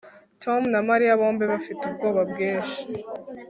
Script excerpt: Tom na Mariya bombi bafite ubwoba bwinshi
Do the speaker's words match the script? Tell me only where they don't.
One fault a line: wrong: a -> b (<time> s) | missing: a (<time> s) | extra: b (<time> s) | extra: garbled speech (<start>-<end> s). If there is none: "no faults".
no faults